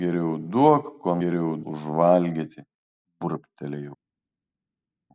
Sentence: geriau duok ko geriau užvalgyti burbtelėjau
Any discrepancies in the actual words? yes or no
no